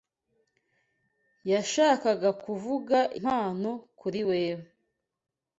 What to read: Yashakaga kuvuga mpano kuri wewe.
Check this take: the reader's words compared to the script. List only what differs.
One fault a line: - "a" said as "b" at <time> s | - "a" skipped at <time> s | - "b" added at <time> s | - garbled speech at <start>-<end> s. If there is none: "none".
none